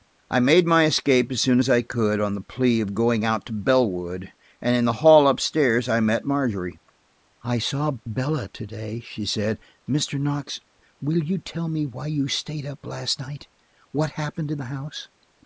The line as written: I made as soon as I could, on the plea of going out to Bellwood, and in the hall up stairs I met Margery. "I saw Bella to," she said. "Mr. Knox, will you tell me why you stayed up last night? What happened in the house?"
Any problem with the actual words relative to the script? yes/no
yes